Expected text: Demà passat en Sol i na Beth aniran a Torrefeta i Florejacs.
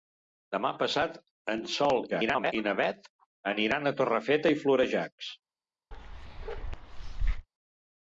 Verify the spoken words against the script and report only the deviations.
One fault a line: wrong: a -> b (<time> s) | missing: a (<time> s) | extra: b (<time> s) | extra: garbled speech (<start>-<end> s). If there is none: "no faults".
extra: garbled speech (2.1-2.5 s)